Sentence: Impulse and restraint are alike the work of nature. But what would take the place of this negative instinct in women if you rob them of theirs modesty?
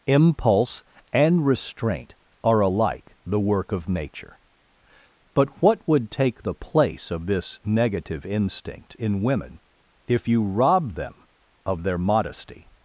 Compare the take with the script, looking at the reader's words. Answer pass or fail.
fail